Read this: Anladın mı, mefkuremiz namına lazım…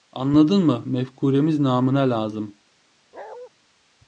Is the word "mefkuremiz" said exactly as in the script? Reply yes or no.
yes